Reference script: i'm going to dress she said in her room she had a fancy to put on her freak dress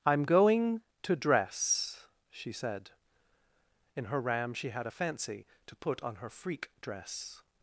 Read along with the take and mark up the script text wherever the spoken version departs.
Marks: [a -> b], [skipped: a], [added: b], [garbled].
i'm going to dress she said in her [room -> ram] she had a fancy to put on her freak dress